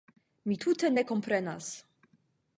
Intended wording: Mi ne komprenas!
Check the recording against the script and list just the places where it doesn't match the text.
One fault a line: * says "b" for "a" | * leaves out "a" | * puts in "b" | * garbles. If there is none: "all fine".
* puts in "tute"